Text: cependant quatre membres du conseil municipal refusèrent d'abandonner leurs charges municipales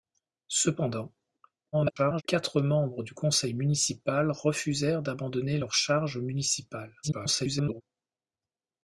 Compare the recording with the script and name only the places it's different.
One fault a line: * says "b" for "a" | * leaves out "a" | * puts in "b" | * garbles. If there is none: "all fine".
* garbles
* garbles